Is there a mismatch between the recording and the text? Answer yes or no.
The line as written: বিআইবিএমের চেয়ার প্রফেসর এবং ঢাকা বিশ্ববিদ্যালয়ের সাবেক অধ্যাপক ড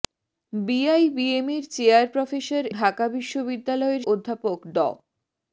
yes